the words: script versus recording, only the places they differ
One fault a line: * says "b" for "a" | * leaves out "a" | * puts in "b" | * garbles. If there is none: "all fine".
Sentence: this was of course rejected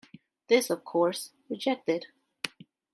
* leaves out "was"